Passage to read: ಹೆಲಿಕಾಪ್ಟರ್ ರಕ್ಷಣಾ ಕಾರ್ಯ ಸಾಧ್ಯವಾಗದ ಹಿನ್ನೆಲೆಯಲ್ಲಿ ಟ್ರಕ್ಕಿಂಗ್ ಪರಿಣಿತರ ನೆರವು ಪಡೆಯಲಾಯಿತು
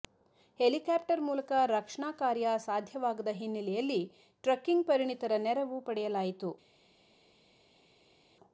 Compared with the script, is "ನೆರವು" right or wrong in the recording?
right